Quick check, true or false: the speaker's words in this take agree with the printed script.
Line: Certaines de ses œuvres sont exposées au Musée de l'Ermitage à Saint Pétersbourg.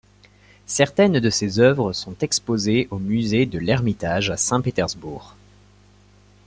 true